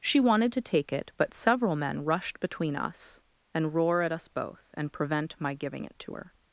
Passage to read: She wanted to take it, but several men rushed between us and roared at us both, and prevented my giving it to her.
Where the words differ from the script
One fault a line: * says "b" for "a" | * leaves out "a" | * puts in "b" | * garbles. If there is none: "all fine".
* says "roar" for "roared"
* says "prevent" for "prevented"